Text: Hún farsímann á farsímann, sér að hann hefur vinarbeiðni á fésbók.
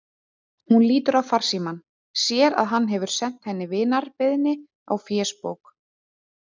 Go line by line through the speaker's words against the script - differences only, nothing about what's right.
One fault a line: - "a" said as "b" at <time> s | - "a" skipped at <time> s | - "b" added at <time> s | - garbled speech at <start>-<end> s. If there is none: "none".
- "farsímann" said as "lítur" at 0.9 s
- "sent henni" added at 3.2 s